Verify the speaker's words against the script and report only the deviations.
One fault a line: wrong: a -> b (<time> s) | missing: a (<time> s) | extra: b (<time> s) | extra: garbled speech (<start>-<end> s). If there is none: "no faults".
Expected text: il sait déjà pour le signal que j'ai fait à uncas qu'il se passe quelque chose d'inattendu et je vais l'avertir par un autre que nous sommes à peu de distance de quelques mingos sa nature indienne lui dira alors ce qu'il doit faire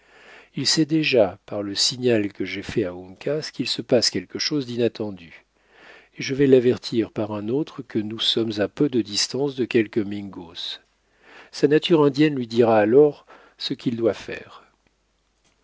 wrong: pour -> par (1.4 s)